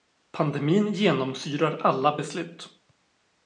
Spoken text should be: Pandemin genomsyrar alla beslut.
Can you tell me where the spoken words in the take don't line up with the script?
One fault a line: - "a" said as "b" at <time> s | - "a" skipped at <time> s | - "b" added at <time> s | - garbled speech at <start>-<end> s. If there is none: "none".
none